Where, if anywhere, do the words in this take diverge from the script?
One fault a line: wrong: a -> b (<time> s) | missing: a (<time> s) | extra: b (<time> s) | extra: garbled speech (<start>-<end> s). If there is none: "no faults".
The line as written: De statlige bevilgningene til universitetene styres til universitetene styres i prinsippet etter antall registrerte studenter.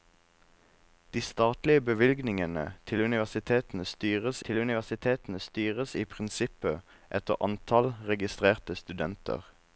no faults